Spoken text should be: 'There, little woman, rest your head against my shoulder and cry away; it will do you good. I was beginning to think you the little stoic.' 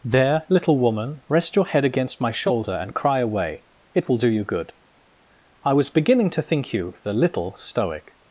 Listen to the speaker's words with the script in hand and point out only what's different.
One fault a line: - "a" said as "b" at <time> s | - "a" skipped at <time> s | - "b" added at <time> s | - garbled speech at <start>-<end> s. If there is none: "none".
none